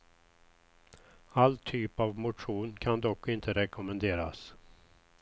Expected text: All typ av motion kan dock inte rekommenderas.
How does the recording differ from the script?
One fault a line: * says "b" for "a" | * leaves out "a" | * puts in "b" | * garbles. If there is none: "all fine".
all fine